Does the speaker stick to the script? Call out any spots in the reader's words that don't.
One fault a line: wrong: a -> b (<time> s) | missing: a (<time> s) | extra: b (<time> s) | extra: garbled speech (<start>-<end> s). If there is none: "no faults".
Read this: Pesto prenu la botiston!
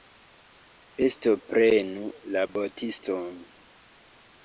no faults